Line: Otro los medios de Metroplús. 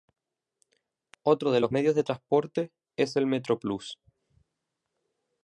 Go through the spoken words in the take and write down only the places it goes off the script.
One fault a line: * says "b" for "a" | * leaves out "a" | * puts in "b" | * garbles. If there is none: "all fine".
* puts in "de"
* puts in "transporte es el"